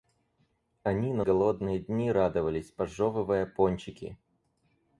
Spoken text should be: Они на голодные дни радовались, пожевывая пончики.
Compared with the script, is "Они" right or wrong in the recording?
right